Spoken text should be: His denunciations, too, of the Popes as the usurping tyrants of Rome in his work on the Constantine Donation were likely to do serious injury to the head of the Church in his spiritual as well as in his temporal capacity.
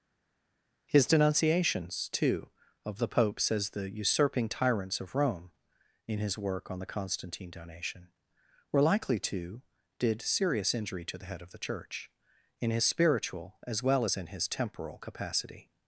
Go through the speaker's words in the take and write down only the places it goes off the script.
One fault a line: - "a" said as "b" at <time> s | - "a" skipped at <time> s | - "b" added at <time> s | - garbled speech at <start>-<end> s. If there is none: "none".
- "do" said as "did" at 10.0 s